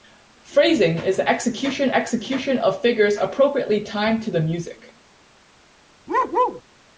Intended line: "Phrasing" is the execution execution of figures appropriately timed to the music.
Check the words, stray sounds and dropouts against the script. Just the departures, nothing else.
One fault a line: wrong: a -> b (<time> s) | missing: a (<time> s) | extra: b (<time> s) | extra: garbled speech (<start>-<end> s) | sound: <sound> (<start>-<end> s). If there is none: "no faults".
sound: bark (6.1-6.6 s)